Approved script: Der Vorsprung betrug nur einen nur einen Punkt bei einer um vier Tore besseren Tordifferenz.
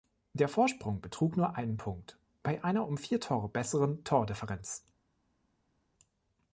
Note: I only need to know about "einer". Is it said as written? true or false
true